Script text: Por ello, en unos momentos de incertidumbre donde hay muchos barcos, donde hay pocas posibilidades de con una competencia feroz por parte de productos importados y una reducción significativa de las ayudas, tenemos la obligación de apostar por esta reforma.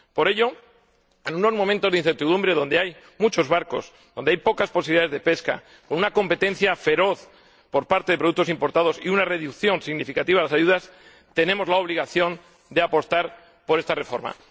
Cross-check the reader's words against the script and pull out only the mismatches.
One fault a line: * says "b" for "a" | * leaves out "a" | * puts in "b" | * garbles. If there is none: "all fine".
* puts in "pesca"